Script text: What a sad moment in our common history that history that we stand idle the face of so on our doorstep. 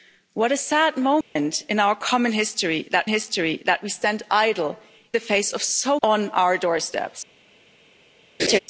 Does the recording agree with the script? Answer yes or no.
yes